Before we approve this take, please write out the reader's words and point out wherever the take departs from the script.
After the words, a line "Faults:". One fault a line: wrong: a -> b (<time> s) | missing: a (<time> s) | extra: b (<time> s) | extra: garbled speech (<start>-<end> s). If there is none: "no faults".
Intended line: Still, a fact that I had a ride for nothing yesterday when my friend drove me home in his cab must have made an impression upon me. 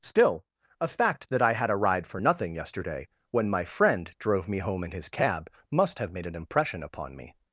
Still, a fact that I had a ride for nothing yesterday when my friend drove me home in his cab must have made an impression upon me.
Faults:
no faults